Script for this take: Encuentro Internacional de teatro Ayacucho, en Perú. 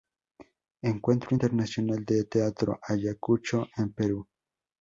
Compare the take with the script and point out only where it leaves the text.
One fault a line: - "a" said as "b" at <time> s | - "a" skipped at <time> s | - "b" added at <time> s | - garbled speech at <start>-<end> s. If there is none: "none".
none